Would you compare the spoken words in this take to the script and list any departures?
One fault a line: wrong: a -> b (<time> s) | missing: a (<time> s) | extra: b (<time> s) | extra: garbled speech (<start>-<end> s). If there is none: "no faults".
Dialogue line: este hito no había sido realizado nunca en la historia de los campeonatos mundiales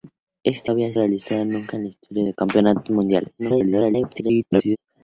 missing: hito (0.7 s)
missing: sido (0.9 s)
extra: garbled speech (3.4-4.8 s)